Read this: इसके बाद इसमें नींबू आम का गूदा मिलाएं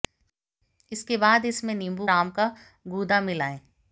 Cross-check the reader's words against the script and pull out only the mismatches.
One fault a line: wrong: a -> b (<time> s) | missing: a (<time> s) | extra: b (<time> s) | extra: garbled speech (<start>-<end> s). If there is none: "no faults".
no faults